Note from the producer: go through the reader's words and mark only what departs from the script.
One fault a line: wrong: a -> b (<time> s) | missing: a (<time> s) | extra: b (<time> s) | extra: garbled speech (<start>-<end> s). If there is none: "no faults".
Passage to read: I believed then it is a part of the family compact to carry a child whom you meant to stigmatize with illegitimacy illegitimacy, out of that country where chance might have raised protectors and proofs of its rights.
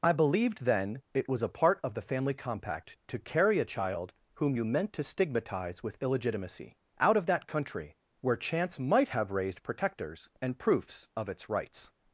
wrong: is -> was (1.3 s)
missing: illegitimacy (6.8 s)